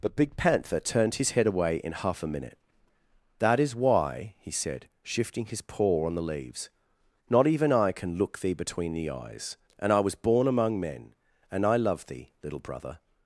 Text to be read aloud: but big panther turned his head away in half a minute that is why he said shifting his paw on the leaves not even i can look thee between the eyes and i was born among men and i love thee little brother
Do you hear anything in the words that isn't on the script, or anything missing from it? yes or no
no